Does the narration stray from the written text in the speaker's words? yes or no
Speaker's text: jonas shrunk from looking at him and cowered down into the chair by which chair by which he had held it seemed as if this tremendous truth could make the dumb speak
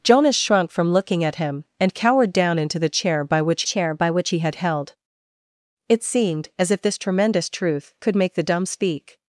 no